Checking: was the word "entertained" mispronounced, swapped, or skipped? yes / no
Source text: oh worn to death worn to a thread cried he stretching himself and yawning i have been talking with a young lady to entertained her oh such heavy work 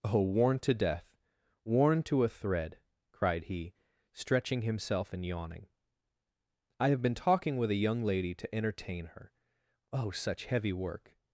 yes